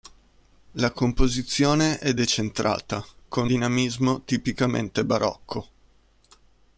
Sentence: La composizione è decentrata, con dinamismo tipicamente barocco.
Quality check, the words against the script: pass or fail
pass